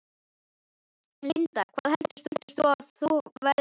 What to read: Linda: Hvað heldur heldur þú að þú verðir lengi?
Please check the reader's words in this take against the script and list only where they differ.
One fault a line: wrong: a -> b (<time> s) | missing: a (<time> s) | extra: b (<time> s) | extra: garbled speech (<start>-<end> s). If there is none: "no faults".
no faults